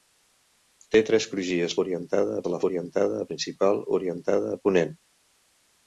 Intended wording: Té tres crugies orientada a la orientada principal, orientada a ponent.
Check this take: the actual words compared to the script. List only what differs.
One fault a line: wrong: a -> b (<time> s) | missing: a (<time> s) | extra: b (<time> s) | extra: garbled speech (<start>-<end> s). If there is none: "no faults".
no faults